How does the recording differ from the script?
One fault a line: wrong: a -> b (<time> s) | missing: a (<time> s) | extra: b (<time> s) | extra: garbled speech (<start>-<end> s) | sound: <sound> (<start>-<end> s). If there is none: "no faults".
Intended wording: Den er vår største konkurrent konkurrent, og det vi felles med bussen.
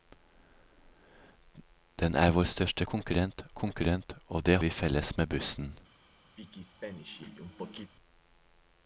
sound: throat clearing (6.4-7.9 s)